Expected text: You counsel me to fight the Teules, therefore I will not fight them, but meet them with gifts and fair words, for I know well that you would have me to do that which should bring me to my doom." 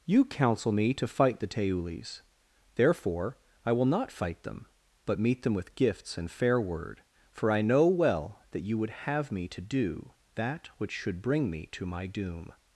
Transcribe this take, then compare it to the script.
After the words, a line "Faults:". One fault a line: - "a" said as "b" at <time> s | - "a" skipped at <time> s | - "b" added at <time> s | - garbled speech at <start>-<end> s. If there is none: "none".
You counsel me to fight the Teules, therefore I will not fight them, but meet them with gifts and fair word, for I know well that you would have me to do that which should bring me to my doom."
Faults:
- "words" said as "word" at 6.6 s